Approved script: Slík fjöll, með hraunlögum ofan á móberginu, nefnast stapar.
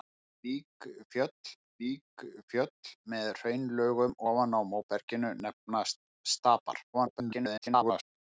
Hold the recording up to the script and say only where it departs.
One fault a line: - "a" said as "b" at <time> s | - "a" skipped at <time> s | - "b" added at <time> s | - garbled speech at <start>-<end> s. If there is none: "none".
- "slík fjöll" added at 1.7 s
- garbled speech at 6.9-8.2 s